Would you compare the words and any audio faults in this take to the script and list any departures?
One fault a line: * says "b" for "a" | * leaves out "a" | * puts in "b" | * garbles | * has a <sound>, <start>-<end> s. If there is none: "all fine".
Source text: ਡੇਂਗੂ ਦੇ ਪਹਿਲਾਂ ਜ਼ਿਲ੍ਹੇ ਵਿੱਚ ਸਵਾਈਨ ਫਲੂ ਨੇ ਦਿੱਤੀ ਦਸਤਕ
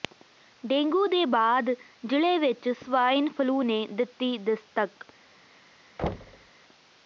* says "ਬਾਅਦ" for "ਪਹਿਲਾਂ"
* has a thud, 6.0-6.5 s